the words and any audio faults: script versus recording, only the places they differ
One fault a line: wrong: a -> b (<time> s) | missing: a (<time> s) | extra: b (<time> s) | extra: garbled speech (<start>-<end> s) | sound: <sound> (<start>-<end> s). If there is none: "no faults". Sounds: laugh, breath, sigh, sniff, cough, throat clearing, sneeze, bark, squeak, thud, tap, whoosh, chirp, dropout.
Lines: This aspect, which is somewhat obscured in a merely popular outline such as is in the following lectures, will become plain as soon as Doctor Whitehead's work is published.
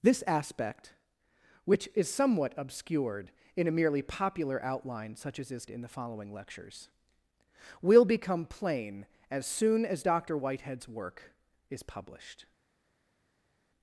no faults